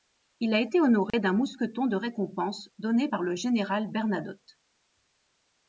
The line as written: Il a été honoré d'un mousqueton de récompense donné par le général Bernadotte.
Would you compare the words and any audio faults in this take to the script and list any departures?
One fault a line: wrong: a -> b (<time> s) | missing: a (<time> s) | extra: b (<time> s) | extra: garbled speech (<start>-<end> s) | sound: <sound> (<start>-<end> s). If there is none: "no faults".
sound: dropout (1.1-1.1 s)